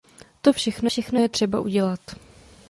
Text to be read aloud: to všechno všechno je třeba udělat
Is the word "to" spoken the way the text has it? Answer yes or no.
yes